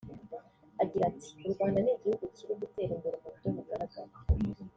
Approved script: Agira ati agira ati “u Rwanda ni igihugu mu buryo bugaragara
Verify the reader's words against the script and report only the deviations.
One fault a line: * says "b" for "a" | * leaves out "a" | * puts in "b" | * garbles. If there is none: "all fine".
* leaves out "agira ati"
* puts in "kiri gutera imbere"